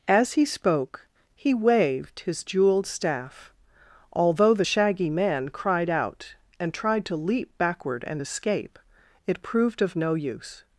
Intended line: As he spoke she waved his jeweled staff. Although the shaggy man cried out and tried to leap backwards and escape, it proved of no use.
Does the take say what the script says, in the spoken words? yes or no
no